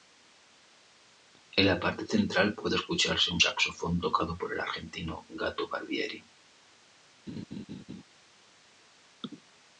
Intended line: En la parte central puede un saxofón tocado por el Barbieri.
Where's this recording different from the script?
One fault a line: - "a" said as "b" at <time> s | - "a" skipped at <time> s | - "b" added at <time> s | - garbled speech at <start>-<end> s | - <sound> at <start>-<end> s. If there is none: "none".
- "escucharse" added at 2.8 s
- "argentino Gato" added at 4.6 s
- laugh at 7.3-8.0 s